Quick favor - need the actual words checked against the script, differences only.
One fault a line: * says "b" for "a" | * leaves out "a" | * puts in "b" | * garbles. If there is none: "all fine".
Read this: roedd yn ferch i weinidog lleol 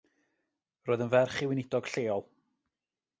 all fine